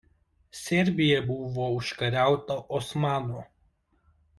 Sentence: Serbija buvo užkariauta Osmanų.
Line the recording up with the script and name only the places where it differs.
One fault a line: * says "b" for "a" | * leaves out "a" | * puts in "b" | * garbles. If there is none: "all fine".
all fine